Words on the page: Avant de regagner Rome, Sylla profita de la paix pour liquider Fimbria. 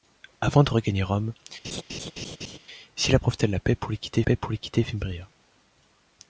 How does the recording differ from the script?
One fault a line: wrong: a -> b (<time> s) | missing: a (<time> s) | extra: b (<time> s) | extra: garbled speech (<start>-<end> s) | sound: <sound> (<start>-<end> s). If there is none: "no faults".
sound: laugh (1.6-2.6 s)
extra: paix pour liquider (4.2 s)